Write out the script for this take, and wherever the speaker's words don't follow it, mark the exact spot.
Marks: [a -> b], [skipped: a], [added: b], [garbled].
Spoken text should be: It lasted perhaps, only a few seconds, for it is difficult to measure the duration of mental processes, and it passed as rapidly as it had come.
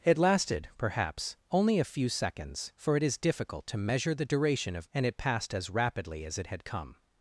It lasted perhaps, only a few seconds, for it is difficult to measure the duration of [skipped: mental processes,] and it passed as rapidly as it had come.